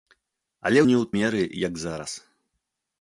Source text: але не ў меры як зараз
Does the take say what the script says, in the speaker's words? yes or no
yes